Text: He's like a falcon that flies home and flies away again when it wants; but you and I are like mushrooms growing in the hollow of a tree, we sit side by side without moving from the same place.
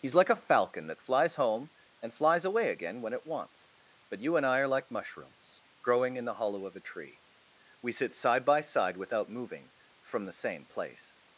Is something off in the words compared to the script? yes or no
no